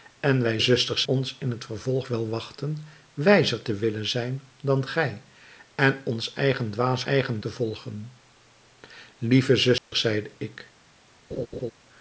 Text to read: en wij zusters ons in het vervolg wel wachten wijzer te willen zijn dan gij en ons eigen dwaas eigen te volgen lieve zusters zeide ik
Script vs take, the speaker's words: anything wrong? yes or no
no